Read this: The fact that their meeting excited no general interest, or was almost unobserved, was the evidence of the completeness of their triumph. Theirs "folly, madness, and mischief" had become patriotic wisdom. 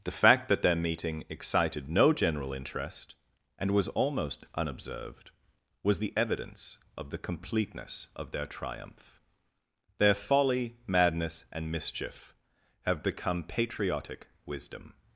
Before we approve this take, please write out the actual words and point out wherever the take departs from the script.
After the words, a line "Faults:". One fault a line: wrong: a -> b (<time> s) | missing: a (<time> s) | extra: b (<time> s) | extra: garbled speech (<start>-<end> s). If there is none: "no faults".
The fact that their meeting excited no general interest, and was almost unobserved, was the evidence of the completeness of their triumph. Their "folly, madness, and mischief" have become patriotic wisdom.
Faults:
wrong: or -> and (3.6 s)
wrong: Theirs -> Their (10.0 s)
wrong: had -> have (12.8 s)